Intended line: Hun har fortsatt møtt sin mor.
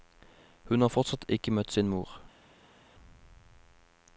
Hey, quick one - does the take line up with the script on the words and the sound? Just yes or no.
no